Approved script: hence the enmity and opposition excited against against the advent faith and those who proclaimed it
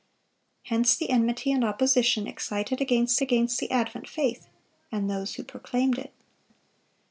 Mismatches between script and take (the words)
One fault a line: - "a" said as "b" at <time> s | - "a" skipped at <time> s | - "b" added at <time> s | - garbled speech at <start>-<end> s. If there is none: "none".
none